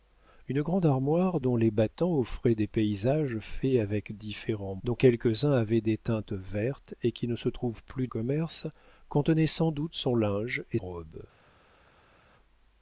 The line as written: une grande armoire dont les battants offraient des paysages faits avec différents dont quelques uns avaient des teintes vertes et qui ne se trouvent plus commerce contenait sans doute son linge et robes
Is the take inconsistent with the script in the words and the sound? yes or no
no